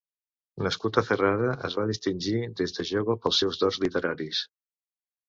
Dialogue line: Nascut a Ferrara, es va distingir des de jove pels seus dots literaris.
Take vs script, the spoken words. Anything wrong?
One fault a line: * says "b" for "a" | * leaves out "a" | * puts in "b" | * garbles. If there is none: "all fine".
all fine